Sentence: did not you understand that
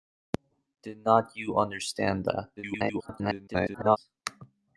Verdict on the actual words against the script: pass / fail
fail